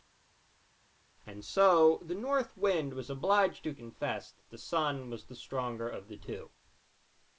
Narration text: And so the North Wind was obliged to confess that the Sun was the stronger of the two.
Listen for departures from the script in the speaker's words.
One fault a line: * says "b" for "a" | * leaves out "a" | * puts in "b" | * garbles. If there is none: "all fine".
all fine